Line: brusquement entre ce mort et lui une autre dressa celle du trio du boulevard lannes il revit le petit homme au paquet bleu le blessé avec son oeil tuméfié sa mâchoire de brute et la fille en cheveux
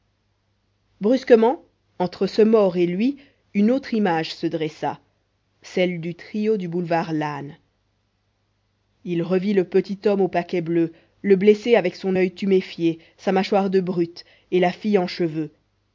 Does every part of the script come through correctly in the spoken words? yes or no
no